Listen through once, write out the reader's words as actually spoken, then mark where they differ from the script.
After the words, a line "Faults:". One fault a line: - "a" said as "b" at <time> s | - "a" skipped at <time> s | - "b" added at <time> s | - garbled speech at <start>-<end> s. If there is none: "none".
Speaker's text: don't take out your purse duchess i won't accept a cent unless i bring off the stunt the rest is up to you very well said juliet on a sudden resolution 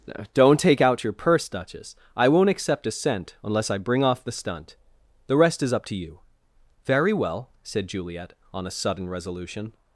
don't take out your purse duchess i won't accept a cent unless i bring off the stunt the rest is up to you very well said juliet on a sudden resolution
Faults:
none